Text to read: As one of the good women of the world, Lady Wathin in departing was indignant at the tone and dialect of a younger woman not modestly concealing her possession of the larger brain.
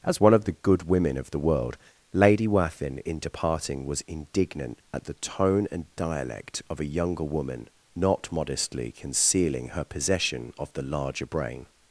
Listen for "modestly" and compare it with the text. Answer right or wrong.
right